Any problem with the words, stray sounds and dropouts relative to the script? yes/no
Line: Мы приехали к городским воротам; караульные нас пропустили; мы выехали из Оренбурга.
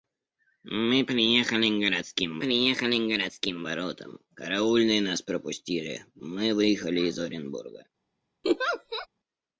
yes